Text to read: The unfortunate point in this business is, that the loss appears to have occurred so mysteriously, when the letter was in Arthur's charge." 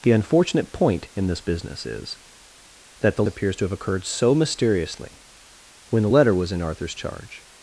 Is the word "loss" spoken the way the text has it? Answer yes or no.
no